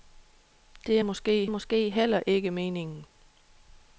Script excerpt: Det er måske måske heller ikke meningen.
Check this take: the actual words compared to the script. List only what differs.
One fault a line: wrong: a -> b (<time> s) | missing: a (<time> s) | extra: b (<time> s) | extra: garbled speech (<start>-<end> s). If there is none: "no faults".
no faults